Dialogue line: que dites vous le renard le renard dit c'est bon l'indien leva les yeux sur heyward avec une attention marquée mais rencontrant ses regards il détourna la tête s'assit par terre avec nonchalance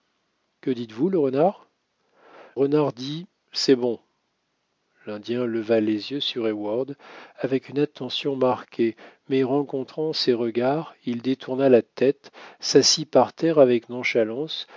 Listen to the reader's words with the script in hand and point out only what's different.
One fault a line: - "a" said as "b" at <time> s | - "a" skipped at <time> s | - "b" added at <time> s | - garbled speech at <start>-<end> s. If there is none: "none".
- "le" skipped at 1.7 s